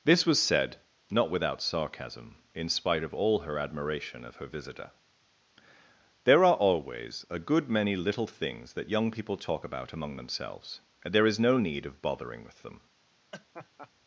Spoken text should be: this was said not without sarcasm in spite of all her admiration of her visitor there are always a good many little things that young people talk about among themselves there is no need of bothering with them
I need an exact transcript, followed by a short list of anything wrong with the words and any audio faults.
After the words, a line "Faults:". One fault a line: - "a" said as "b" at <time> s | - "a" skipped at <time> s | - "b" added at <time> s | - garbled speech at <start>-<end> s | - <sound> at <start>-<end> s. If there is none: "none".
this was said not without sarcasm in spite of all her admiration of her visitor there are always a good many little things that young people talk about among themselves and there is no need of bothering with them
Faults:
- "and" added at 11.0 s
- laugh at 13.3-13.9 s